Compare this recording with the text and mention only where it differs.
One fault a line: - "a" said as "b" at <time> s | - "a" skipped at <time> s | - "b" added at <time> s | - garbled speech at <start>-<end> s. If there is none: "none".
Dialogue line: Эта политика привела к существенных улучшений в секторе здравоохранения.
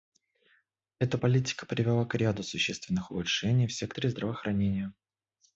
- "ряду" added at 2.1 s